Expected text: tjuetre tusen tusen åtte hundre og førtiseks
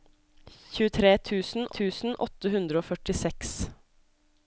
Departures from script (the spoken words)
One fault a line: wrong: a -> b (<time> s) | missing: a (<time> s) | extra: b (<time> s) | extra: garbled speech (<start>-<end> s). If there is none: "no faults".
no faults